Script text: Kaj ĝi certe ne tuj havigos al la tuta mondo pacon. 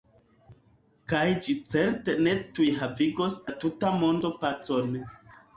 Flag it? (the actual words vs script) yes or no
yes